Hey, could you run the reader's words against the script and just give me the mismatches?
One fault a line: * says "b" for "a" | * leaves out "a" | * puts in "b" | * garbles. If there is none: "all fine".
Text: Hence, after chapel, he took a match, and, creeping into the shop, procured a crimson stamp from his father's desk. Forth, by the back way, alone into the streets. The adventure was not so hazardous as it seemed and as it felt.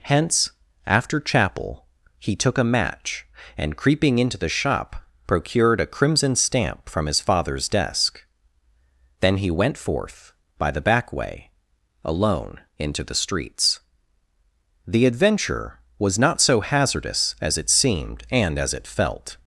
* puts in "Then he went"